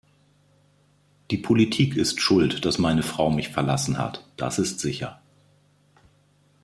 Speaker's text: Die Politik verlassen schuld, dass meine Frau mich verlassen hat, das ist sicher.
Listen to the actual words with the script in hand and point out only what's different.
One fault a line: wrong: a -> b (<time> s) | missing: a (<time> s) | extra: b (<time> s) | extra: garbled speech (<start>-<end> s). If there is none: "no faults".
wrong: verlassen -> ist (1.9 s)